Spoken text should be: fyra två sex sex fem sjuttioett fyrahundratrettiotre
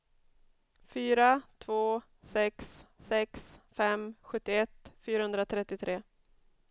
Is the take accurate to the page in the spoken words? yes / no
yes